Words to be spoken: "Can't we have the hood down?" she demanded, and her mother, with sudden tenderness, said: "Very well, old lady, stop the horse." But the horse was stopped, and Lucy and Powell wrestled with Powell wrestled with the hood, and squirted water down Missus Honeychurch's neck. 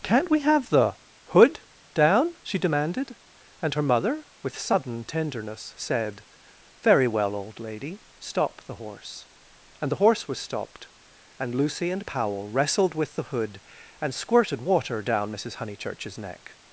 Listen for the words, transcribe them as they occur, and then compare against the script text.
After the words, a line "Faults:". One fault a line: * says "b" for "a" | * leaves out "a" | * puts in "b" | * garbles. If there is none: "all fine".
"Can't we have the hood down?" she demanded, and her mother, with sudden tenderness, said: "Very well, old lady, stop the horse." And the horse was stopped, and Lucy and Powell wrestled with the hood, and squirted water down Missus Honeychurch's neck.
Faults:
* says "And" for "But"
* leaves out "Powell wrestled with"